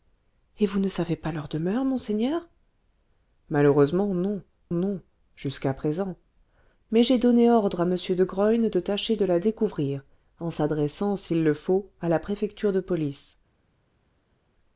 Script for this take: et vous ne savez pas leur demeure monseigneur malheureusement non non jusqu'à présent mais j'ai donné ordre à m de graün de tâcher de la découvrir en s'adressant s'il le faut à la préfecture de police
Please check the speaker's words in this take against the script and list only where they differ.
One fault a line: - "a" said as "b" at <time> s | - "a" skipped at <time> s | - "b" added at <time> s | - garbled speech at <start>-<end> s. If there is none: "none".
none